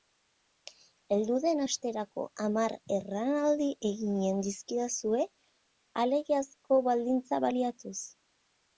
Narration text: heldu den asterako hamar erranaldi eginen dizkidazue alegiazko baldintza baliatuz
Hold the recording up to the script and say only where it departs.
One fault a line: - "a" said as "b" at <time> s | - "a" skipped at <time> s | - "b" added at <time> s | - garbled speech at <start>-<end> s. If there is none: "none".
none